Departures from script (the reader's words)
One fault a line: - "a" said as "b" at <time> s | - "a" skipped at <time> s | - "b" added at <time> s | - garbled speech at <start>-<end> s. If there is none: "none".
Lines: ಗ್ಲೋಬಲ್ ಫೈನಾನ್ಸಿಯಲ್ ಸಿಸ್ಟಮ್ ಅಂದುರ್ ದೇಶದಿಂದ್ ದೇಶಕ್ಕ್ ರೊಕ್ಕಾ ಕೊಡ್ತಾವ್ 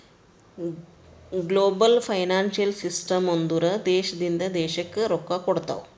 none